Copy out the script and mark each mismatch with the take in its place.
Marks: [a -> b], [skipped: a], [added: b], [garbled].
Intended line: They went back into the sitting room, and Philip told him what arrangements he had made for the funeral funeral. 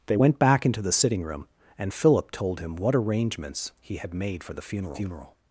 They went back into the sitting room, and Philip told him what arrangements he had made for the funeral funeral.